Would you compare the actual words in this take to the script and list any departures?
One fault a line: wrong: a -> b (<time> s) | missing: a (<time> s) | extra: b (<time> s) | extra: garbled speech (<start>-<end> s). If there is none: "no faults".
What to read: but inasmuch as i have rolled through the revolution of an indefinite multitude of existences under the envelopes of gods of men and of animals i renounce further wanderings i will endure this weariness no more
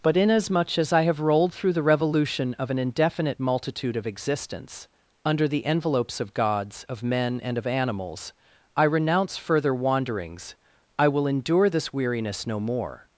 wrong: existences -> existence (4.1 s)